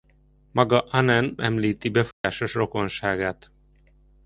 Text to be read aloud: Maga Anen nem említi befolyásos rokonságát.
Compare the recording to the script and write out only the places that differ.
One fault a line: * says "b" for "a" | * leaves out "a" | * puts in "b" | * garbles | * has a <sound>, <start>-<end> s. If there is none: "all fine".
* leaves out "nem"
* has a dropout, 2.1-2.2 s